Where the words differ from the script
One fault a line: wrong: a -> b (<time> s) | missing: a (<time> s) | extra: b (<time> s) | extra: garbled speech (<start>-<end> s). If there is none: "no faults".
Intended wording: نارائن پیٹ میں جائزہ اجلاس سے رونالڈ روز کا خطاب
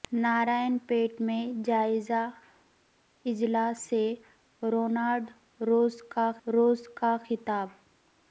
extra: روز کا (6.5 s)